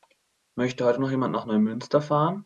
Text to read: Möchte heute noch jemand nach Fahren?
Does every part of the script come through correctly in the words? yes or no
no